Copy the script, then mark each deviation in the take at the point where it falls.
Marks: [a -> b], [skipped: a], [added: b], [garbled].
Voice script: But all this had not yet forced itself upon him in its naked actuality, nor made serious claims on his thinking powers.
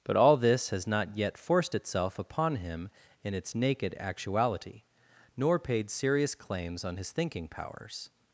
But all this [had -> has] not yet forced itself upon him in its naked actuality, nor [made -> paid] serious claims on his thinking powers.